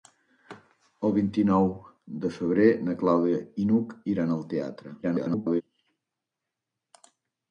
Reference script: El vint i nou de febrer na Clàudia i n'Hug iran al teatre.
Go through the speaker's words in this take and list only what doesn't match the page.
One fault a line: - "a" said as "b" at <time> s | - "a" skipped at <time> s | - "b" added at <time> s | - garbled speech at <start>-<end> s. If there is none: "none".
- garbled speech at 5.0-5.6 s